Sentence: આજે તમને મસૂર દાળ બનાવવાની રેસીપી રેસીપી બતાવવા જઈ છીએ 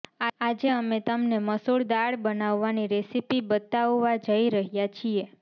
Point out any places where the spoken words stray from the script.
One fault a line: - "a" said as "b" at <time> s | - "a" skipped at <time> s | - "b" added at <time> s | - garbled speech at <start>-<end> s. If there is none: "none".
- "અમે" added at 0.7 s
- "રેસીપી" skipped at 3.4 s
- "રહ્યા" added at 4.5 s